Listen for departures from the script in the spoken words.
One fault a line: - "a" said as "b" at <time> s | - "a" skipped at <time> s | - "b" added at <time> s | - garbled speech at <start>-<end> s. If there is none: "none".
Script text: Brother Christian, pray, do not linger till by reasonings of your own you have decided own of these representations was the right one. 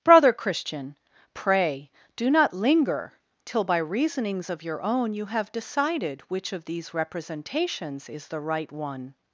- "own" said as "which" at 6.3 s
- "was" said as "is" at 8.1 s